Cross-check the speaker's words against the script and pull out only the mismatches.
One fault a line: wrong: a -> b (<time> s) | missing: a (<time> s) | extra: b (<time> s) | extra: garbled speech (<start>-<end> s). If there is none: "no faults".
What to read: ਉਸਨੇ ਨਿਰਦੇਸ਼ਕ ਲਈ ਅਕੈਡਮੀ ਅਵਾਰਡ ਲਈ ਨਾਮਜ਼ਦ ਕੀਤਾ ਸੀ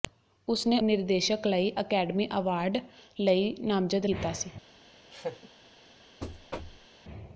no faults